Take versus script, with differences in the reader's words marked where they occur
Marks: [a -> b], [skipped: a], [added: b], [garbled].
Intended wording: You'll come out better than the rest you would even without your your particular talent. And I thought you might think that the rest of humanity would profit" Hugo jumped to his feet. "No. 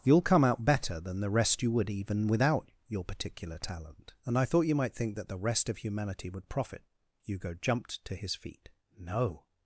You'll come out better than the rest you would even without your [skipped: your] particular talent. And I thought you might think that the rest of humanity would profit" Hugo jumped to his feet. "No.